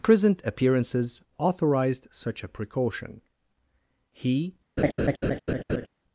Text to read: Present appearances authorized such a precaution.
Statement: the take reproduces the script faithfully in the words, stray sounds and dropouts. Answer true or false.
false